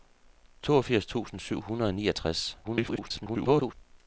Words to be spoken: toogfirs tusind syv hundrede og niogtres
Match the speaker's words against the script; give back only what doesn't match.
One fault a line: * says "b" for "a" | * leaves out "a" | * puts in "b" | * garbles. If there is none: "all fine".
* garbles